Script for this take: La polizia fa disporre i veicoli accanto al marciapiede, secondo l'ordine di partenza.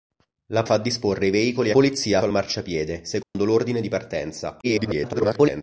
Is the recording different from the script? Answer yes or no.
yes